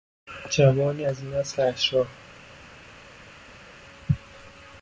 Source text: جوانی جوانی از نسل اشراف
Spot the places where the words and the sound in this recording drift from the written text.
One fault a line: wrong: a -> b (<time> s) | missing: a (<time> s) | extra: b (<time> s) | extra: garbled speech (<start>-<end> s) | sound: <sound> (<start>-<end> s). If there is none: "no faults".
missing: جوانی (1.1 s)